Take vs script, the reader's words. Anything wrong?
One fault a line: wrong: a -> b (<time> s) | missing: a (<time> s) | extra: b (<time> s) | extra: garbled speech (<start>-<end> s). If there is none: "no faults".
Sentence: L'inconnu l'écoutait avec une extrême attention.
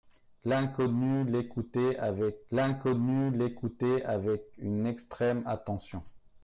extra: l'inconnu l'écoutait avec (2.5 s)